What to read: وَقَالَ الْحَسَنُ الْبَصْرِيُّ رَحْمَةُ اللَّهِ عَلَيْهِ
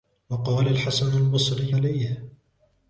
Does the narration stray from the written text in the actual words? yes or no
yes